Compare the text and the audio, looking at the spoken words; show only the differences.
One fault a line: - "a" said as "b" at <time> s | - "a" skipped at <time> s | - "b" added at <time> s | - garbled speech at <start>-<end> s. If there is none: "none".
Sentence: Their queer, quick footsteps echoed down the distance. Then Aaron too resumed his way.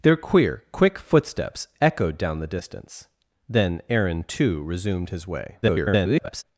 - garbled speech at 5.6-6.4 s